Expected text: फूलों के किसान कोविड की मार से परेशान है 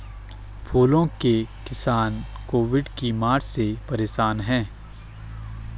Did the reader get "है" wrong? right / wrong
right